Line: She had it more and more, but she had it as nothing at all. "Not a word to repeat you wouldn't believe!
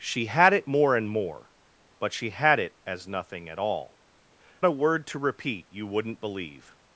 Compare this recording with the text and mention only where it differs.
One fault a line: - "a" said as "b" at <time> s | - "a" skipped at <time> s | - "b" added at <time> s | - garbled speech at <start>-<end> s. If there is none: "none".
- "Not" skipped at 4.0 s